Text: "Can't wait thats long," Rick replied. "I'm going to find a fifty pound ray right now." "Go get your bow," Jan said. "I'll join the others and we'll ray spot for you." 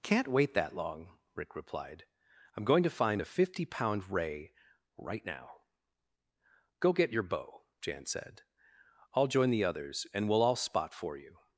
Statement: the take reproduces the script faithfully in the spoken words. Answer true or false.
false